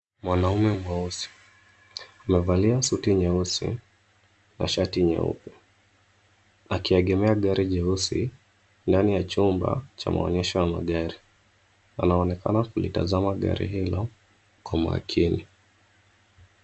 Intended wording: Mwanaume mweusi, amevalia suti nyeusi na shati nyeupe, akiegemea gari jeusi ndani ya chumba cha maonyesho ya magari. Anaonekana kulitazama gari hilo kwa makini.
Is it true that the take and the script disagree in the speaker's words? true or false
false